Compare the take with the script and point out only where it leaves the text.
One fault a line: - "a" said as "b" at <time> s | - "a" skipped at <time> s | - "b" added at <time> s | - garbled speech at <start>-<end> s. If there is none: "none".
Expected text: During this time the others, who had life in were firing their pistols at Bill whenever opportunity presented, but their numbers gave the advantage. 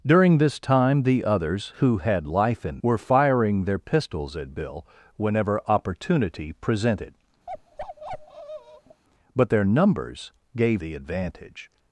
none